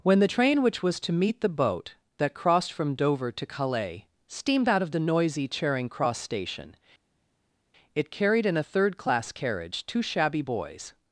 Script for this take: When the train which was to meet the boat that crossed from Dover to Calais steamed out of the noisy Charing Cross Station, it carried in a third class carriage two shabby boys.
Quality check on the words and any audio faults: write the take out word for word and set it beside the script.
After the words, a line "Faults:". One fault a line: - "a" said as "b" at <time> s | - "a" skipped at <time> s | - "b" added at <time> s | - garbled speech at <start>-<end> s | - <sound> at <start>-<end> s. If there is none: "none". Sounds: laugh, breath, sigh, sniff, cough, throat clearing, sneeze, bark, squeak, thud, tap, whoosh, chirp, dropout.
When the train which was to meet the boat that crossed from Dover to Calais steamed out of the noisy Charing Cross Station, it carried in a third class carriage two shabby boys.
Faults:
none